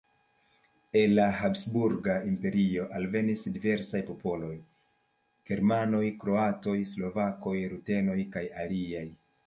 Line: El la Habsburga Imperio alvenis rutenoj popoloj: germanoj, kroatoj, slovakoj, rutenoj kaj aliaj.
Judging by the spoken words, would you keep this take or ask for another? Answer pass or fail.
fail